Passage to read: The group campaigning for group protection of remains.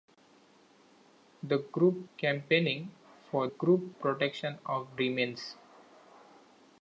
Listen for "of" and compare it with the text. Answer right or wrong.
right